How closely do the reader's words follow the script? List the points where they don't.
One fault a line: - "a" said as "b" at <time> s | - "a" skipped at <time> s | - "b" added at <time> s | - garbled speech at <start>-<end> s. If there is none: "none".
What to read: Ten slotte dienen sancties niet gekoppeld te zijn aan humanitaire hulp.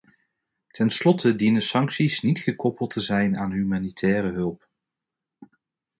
none